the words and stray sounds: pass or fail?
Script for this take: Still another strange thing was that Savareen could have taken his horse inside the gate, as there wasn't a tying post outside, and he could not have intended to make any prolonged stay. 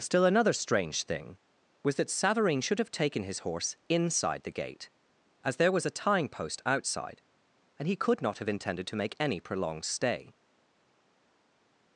fail